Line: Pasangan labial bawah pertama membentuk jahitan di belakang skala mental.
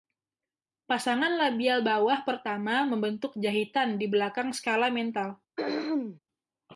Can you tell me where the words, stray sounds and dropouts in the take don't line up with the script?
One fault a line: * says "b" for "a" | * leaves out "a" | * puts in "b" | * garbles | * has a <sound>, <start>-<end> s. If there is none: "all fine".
* has a throat clearing, 5.6-6.2 s